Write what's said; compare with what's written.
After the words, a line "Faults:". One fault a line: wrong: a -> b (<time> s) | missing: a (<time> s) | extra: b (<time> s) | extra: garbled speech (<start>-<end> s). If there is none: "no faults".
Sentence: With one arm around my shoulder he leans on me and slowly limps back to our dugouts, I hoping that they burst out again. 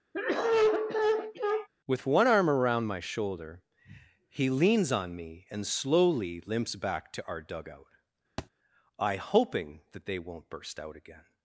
With one arm around my shoulder he leans on me and slowly limps back to our dugout, I hoping that they won't burst out again.
Faults:
wrong: dugouts -> dugout (7.4 s)
extra: won't (10.2 s)